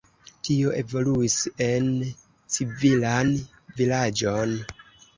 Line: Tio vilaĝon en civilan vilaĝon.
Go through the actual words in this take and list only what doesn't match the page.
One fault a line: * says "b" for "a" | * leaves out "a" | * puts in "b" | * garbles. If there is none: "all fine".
* says "evoluis" for "vilaĝon"